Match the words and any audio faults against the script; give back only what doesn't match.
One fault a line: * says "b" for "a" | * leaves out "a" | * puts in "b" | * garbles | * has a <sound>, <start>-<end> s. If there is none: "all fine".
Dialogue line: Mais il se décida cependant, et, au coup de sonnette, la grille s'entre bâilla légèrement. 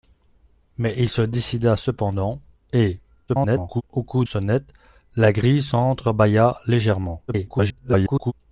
* garbles
* leaves out "de"
* garbles